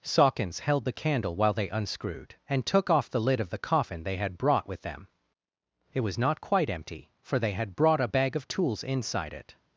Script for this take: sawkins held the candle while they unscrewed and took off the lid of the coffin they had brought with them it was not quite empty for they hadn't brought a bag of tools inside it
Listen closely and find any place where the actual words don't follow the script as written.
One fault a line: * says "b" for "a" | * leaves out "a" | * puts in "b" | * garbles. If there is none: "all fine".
* says "had" for "hadn't"